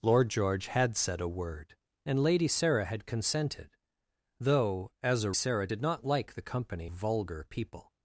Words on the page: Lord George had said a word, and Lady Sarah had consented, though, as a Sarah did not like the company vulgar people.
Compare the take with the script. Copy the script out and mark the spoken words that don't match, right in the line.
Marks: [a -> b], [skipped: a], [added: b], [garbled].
Lord George had said a word, and Lady Sarah had consented, though, as a Sarah did not like the company vulgar people.